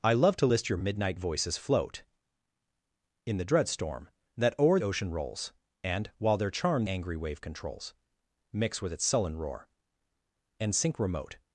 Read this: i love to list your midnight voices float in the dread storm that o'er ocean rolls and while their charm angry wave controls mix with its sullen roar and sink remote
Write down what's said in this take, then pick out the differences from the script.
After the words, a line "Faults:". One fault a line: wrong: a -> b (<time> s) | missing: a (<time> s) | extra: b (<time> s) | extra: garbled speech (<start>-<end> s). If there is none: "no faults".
i love to list your midnight voices float in the dread storm that o'er ocean rolls and while their charm angry wave controls mix with its sullen roar and sink remote
Faults:
no faults